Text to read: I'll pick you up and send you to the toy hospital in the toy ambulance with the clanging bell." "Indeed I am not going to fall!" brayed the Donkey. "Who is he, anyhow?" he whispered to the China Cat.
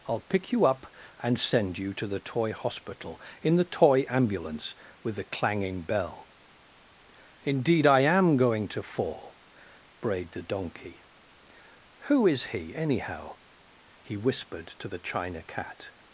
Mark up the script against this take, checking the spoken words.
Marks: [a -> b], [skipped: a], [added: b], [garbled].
I'll pick you up and send you to the toy hospital in the toy ambulance with the clanging bell." "Indeed I am [skipped: not] going to fall!" brayed the Donkey. "Who is he, anyhow?" he whispered to the China Cat.